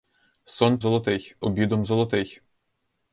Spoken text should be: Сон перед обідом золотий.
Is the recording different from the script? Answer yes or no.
yes